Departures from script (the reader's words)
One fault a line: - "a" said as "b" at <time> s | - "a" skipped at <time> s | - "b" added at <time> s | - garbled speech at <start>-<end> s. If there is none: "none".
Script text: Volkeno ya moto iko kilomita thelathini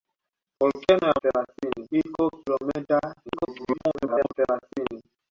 - "moto" said as "thelathini" at 1.2 s
- garbled speech at 3.3-4.3 s